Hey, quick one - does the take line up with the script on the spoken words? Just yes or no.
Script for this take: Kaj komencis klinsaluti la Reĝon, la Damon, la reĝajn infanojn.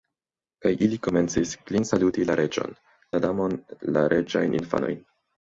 no